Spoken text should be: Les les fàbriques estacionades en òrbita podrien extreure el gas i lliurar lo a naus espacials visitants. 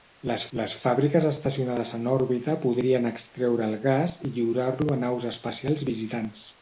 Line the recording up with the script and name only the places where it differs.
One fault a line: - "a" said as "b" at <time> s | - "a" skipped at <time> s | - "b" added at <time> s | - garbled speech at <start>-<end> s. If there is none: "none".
none